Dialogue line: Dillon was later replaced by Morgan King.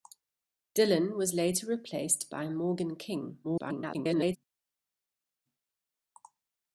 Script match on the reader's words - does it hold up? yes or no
no